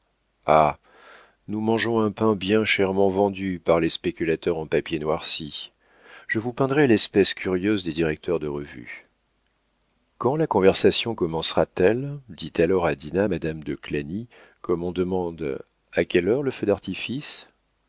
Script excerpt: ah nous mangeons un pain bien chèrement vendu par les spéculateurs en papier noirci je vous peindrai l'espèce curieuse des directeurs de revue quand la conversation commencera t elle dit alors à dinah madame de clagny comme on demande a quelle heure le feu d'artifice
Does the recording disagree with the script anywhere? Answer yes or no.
no